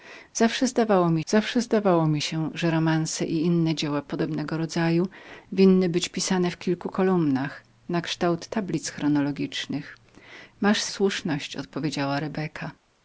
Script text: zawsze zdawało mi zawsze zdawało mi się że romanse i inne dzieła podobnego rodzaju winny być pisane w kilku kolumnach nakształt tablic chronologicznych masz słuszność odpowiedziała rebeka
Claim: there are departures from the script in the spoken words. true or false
false